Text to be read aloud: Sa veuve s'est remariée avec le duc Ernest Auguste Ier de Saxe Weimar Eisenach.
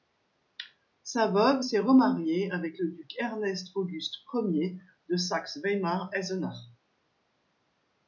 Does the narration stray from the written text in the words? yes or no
no